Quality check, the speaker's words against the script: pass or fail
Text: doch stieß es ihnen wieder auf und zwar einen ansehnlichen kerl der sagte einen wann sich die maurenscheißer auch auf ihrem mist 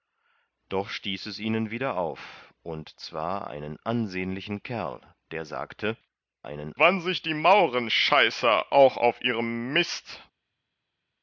pass